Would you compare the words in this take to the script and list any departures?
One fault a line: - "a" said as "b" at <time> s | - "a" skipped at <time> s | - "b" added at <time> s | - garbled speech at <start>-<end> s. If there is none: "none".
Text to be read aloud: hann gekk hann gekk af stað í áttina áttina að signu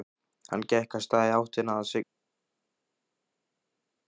- "hann gekk" skipped at 0.9 s
- "áttina" skipped at 1.8 s